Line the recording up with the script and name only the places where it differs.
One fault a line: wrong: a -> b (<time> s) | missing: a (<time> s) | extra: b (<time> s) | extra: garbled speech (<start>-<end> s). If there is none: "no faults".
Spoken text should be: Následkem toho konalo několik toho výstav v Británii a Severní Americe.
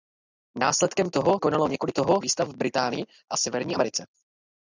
no faults